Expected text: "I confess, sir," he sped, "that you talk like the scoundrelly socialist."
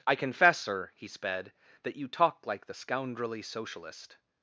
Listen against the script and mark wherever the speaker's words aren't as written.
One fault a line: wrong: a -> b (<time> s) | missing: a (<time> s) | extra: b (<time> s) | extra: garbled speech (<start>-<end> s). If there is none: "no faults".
no faults